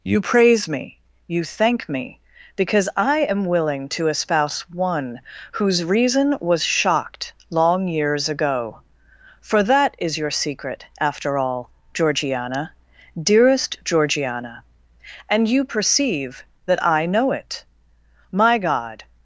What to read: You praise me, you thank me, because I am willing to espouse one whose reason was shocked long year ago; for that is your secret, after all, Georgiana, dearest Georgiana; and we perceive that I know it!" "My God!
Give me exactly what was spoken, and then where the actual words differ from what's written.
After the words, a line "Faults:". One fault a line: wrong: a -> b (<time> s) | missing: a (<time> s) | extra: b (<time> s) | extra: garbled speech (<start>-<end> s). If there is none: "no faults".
You praise me, you thank me, because I am willing to espouse one whose reason was shocked long years ago; for that is your secret, after all, Georgiana, dearest Georgiana; and you perceive that I know it!" "My God!
Faults:
wrong: year -> years (7.9 s)
wrong: we -> you (15.5 s)